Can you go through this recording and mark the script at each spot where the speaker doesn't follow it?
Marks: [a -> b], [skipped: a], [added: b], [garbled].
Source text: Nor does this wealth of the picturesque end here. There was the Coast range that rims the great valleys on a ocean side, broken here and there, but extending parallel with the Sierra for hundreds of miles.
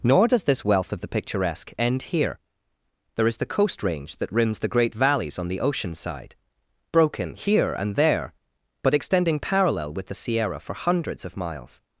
Nor does this wealth of the picturesque end here. There [was -> is] the Coast range that rims the great valleys on [a -> the] ocean side, broken here and there, but extending parallel with the Sierra for hundreds of miles.